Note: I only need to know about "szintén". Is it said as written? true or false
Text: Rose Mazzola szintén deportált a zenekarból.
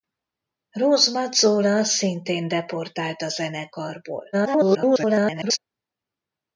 true